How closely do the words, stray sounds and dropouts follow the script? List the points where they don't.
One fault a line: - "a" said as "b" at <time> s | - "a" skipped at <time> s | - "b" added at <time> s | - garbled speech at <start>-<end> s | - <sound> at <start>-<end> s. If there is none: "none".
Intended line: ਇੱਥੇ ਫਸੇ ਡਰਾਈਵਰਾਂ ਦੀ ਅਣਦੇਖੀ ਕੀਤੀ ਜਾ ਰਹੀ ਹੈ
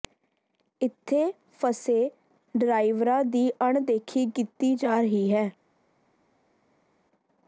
none